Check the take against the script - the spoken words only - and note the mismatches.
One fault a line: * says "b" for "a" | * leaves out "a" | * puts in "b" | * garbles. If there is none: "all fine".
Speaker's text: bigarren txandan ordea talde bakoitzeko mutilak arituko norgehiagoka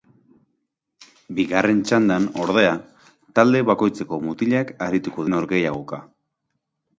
all fine